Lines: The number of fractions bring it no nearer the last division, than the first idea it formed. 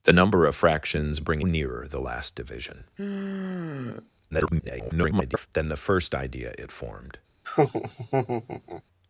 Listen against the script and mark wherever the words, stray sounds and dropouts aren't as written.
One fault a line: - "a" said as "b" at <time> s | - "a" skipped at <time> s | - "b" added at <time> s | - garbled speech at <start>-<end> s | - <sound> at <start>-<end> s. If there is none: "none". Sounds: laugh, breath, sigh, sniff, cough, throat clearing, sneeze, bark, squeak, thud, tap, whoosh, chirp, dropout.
- "it no" skipped at 1.4 s
- sigh at 3.0-4.1 s
- garbled speech at 4.3-5.5 s
- laugh at 7.4-8.8 s